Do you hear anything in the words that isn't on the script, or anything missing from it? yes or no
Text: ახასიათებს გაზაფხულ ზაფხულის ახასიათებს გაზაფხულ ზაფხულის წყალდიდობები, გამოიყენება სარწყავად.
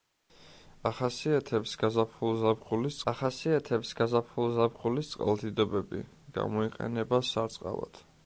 no